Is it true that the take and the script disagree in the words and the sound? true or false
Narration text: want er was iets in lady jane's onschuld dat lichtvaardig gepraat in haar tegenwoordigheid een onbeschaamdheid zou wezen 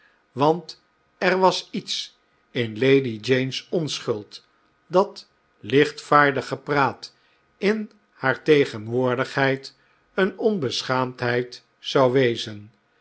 false